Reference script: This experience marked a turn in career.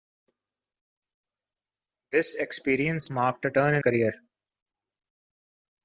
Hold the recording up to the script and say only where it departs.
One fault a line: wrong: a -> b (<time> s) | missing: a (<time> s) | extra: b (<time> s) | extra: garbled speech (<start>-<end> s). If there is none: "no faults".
no faults